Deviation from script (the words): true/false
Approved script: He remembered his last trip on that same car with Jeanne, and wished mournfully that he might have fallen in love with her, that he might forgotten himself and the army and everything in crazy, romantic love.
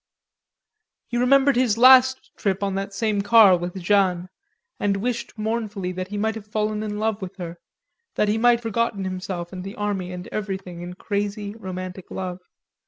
false